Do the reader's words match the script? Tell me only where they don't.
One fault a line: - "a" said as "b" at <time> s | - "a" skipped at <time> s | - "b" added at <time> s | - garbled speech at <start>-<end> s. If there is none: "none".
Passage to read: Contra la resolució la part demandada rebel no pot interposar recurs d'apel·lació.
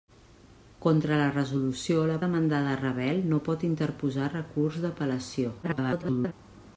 - "part" skipped at 2.1 s
- garbled speech at 5.6-6.3 s